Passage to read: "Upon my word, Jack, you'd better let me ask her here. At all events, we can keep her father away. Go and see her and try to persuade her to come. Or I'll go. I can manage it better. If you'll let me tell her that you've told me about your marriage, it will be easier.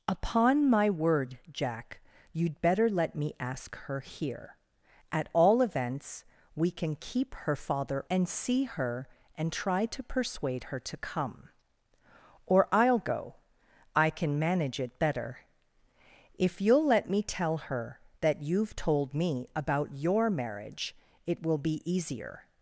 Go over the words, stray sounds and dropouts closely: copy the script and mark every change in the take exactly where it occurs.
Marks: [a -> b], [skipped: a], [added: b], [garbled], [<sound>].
"Upon my word, Jack, you'd better let me ask her here. At all events, we can keep her father [skipped: away. Go] and see her and try to persuade her to come. Or I'll go. I can manage it better. If you'll let me tell her that you've told me about your marriage, it will be easier.